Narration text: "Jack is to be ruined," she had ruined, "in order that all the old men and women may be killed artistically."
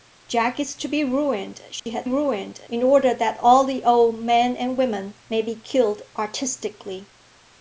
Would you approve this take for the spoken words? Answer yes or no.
yes